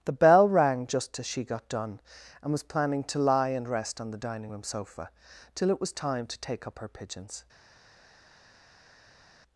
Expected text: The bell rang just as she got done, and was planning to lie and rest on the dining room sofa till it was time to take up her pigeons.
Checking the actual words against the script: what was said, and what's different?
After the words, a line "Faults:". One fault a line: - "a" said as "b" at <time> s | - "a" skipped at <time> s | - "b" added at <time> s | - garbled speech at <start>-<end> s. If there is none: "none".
The bell rang just as she got done, and was planning to lie and rest on the dining room sofa till it was time to take up her pigeons.
Faults:
none